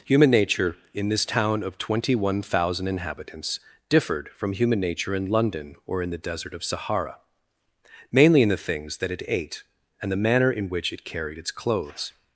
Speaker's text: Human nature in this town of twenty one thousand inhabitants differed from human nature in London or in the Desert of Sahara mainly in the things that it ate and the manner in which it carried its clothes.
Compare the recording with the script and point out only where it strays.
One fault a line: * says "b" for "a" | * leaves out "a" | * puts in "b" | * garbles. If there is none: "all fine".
all fine